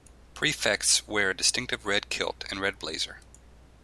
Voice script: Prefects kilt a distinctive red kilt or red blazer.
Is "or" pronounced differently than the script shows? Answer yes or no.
yes